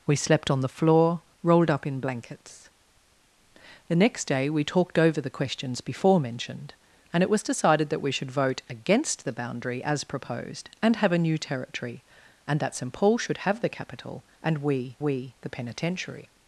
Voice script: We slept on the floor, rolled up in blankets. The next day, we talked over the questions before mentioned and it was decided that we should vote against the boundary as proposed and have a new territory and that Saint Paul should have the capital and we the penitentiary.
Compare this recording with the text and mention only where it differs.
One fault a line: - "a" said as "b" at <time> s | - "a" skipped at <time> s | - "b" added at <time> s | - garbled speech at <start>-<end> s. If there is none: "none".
- "we" added at 15.0 s